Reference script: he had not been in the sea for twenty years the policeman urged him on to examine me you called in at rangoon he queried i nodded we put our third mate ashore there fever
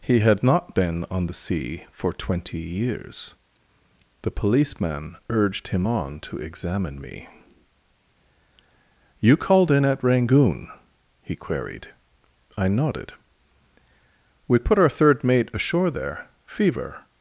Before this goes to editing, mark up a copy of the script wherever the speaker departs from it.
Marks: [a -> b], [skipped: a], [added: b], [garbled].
he had not been [in -> on] the sea for twenty years the policeman urged him on to examine me you called in at rangoon he queried i nodded we put our third mate ashore there fever